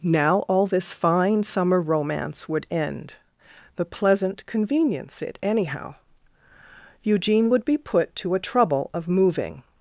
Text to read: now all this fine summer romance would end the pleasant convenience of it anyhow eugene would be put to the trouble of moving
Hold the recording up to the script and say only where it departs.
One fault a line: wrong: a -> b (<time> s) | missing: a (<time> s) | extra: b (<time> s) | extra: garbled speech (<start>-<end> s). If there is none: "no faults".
missing: of (5.2 s)
wrong: the -> a (8.3 s)